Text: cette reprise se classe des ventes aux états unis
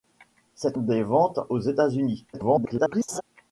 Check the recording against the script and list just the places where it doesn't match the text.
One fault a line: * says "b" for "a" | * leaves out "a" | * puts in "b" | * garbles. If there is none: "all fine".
* leaves out "reprise se classe"
* garbles